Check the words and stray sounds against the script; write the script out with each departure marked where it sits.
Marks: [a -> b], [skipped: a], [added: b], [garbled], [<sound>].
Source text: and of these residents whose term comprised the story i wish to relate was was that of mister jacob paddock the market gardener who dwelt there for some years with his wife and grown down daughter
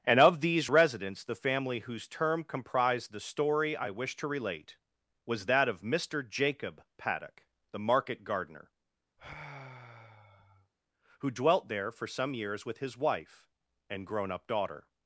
and of these residents [added: the family] whose term comprised the story i wish to relate was [skipped: was] that of mister jacob paddock the market gardener [sigh] who dwelt there for some years with his wife and grown [down -> up] daughter